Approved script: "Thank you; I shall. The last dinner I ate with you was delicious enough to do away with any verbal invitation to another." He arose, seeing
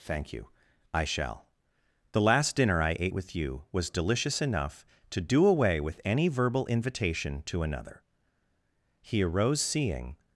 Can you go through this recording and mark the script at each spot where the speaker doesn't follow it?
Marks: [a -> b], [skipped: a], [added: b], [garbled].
"Thank you; I shall. The last dinner I ate with you was delicious enough to do away with any verbal invitation to another." He arose, seeing